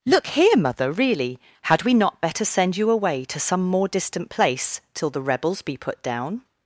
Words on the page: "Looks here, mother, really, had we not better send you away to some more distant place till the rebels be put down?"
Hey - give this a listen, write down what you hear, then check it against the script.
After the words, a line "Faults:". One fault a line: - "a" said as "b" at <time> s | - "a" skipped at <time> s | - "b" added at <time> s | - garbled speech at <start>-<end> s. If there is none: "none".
"Look here, mother, really, had we not better send you away to some more distant place till the rebels be put down?"
Faults:
- "Looks" said as "Look" at 0.1 s